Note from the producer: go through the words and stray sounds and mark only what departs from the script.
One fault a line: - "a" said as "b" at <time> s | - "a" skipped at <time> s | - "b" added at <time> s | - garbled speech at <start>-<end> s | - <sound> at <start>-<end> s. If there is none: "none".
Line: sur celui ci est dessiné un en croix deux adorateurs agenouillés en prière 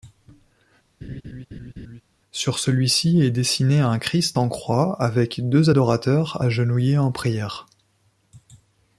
- laugh at 1.0-2.0 s
- "christ" added at 4.0 s
- "avec" added at 5.0 s